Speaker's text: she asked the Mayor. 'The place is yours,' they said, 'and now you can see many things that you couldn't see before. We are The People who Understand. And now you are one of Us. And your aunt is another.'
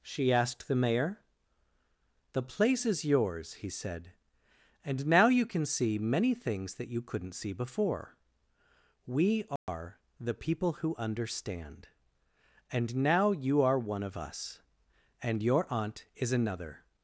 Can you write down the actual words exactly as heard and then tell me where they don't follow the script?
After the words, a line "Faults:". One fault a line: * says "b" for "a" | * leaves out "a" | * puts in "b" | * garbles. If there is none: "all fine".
she asked the Mayor. 'The place is yours,' he said, 'and now you can see many things that you couldn't see before. We are The People who Understand. And now you are one of Us. And your aunt is another.'
Faults:
* says "he" for "they"